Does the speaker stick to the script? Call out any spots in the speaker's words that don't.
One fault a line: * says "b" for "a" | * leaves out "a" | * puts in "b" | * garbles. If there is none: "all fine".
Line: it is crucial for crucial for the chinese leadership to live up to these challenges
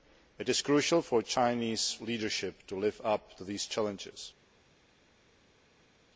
* leaves out "crucial for"